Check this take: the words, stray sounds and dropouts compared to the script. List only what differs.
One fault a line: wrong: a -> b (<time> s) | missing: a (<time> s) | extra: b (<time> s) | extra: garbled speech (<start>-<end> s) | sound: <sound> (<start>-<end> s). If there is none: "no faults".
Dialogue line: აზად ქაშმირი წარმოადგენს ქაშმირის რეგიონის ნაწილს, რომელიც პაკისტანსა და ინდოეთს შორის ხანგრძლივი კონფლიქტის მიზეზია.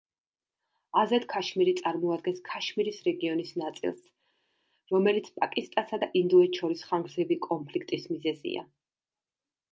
no faults